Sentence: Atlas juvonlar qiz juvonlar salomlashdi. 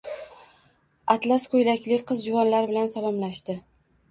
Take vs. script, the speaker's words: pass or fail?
fail